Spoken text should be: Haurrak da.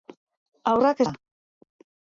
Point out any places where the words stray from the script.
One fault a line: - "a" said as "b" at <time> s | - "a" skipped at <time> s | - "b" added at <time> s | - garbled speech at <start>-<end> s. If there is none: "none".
none